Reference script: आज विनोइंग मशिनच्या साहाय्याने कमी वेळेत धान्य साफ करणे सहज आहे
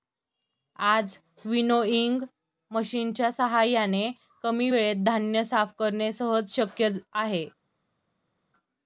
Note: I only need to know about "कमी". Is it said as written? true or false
true